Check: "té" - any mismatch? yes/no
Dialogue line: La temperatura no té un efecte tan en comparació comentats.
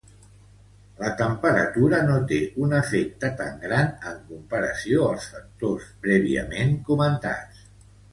no